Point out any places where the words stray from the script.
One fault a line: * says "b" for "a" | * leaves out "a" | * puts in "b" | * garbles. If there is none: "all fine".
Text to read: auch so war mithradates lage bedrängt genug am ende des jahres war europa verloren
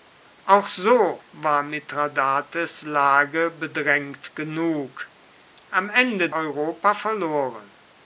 * leaves out "des jahres war"